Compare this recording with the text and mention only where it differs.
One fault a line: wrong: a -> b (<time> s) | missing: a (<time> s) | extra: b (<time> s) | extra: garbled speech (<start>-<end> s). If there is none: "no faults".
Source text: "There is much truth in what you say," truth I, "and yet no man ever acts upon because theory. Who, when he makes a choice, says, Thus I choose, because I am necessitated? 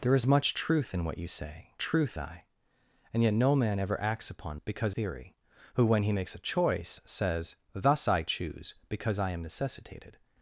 no faults